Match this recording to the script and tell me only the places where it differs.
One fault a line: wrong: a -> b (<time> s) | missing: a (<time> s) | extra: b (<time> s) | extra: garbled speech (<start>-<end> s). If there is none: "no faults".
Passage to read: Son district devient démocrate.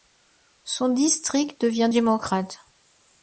no faults